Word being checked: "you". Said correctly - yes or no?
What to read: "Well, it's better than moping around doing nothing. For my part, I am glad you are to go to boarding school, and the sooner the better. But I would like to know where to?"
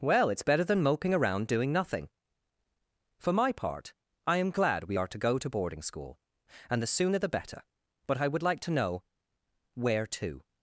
no